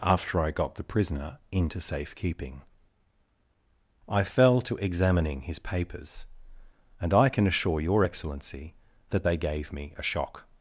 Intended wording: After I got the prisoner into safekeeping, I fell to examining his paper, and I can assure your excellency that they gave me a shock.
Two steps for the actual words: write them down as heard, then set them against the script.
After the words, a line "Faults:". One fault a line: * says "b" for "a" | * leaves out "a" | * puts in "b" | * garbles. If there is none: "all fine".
After I got the prisoner into safekeeping, I fell to examining his papers, and I can assure your excellency that they gave me a shock.
Faults:
* says "papers" for "paper"